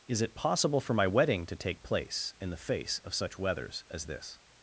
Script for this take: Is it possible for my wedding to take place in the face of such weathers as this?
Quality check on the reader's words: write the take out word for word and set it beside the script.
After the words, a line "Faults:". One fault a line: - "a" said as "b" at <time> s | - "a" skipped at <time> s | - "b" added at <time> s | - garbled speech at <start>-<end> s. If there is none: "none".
Is it possible for my wedding to take place in the face of such weathers as this?
Faults:
none